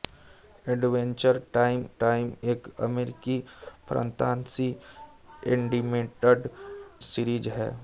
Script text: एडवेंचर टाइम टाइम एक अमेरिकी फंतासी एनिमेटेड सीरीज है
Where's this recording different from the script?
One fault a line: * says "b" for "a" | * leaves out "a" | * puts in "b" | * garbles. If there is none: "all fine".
all fine